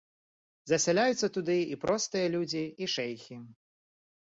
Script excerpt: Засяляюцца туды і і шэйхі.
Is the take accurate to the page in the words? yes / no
no